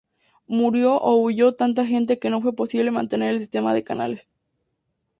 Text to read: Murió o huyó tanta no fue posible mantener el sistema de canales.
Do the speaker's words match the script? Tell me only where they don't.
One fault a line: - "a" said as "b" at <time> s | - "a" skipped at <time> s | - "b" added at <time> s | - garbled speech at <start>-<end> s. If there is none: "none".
- "gente que" added at 1.9 s